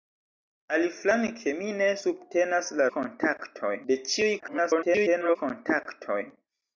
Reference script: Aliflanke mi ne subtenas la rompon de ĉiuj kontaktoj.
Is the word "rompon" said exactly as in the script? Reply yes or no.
no